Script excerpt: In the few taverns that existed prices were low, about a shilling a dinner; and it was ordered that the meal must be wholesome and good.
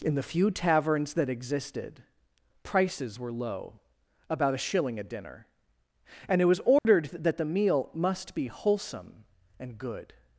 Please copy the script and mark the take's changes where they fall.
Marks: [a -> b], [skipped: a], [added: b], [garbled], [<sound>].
In the few taverns that existed prices were low, about a shilling a dinner; and it was ordered [dropout] that the meal must be wholesome and good.